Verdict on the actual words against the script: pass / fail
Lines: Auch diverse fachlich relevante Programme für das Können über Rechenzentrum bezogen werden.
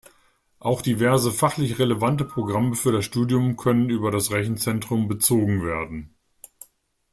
fail